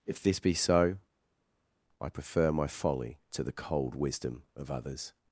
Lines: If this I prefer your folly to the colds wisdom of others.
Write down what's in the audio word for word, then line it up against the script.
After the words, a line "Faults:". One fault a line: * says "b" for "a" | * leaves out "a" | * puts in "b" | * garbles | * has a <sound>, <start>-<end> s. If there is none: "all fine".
If this be so, I prefer my folly to the cold wisdom of others.
Faults:
* puts in "be so"
* says "my" for "your"
* says "cold" for "colds"